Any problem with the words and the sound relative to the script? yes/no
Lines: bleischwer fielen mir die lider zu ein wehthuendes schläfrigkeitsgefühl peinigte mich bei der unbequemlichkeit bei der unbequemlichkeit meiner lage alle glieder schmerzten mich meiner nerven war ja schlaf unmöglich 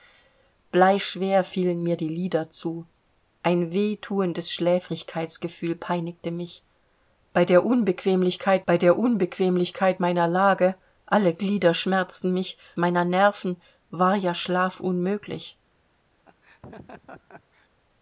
yes